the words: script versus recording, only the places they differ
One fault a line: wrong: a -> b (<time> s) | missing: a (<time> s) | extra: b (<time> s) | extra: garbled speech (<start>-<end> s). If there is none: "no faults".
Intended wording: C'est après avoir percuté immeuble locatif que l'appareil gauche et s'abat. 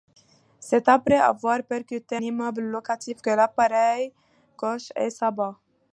no faults